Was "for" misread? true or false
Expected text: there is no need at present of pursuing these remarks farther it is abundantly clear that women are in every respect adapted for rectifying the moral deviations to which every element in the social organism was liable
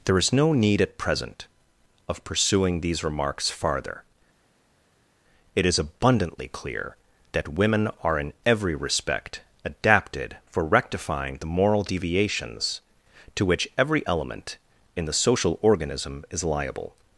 false